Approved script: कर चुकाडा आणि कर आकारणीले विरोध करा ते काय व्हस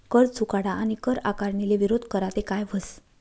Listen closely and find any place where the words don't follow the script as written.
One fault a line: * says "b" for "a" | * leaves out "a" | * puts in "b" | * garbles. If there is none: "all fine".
all fine